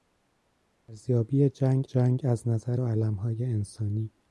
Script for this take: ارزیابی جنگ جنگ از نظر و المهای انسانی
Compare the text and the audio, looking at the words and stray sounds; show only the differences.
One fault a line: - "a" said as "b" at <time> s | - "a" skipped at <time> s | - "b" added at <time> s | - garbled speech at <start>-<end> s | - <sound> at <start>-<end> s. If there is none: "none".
none